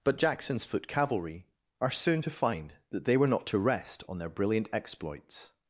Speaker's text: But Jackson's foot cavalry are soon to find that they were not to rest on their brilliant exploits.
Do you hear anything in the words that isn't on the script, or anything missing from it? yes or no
no